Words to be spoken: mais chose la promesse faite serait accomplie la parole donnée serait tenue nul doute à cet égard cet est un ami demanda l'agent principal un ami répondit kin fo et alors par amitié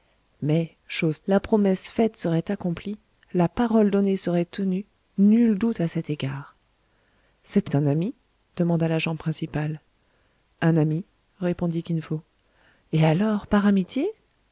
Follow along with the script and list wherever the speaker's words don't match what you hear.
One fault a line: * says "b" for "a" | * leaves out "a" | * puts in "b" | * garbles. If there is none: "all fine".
all fine